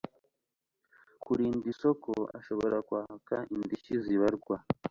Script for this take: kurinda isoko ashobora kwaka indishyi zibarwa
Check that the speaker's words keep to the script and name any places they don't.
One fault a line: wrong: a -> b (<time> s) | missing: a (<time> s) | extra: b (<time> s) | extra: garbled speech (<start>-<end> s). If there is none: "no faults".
no faults